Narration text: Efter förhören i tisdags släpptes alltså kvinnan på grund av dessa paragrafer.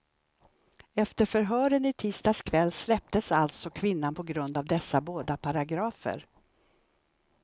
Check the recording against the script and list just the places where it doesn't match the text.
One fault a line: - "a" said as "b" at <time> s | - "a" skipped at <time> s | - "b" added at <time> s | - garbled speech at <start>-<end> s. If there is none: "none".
- "kväll" added at 2.4 s
- "båda" added at 5.0 s